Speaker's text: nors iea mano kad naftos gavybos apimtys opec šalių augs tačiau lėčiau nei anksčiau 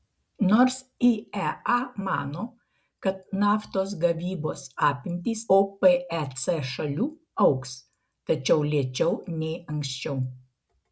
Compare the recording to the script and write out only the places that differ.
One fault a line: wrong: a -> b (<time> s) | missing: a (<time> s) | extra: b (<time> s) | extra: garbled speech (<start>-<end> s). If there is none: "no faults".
no faults